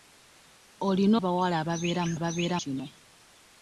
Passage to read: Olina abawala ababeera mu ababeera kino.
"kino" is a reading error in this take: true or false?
false